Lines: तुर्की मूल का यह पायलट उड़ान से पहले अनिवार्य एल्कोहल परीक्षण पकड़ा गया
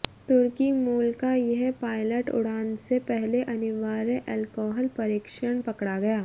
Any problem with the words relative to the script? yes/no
no